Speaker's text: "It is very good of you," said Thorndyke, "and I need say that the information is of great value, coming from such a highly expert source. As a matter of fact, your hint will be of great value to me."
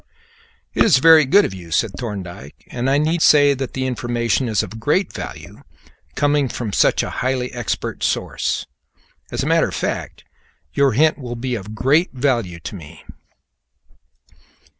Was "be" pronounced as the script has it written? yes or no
yes